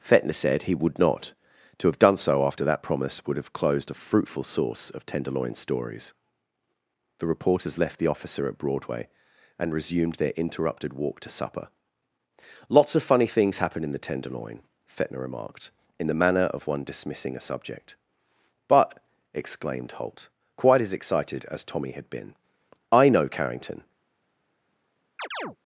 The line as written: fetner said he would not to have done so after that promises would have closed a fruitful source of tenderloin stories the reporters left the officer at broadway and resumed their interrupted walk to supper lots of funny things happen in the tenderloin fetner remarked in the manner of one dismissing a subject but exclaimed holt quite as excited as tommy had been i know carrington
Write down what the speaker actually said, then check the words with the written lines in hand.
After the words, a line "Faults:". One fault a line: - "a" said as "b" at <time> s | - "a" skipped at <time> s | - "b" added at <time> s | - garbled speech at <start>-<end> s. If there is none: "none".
fetner said he would not to have done so after that promise would have closed a fruitful source of tenderloin stories the reporters left the officer at broadway and resumed their interrupted walk to supper lots of funny things happen in the tenderloin fetner remarked in the manner of one dismissing a subject but exclaimed holt quite as excited as tommy had been i know carrington
Faults:
- "promises" said as "promise" at 2.8 s